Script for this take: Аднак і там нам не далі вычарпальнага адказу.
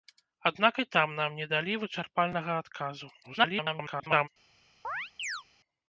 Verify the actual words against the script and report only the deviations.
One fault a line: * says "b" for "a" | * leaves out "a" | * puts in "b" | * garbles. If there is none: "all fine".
* garbles